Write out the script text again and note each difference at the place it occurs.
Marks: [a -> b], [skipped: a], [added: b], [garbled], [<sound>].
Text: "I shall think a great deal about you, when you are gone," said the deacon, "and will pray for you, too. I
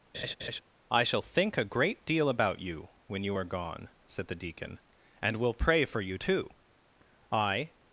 [laugh] "I shall think a great deal about you, when you are gone," said the deacon, "and will pray for you, too. I